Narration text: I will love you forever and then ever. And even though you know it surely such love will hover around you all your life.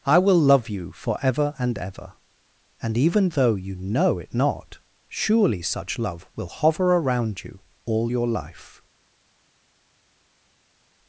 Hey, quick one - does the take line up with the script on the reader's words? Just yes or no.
no